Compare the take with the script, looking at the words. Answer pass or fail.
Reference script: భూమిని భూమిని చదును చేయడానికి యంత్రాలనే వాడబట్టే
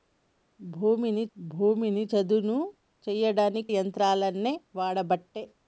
pass